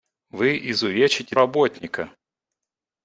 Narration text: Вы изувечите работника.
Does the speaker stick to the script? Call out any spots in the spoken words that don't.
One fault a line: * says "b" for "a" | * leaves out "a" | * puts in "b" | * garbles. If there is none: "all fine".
all fine